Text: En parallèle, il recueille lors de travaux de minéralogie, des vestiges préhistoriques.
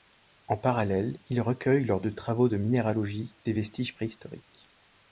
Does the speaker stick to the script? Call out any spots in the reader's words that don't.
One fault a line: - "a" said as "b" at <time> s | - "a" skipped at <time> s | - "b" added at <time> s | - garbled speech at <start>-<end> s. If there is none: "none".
none